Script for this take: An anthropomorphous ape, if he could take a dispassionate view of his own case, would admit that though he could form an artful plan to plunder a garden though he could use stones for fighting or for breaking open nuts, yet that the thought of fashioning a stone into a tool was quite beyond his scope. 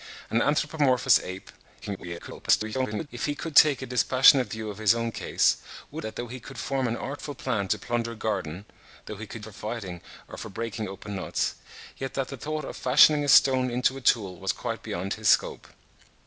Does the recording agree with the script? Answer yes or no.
no